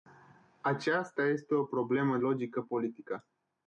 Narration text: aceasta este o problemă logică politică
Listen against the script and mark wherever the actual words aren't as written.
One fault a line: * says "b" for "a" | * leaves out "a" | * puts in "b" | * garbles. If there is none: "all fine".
all fine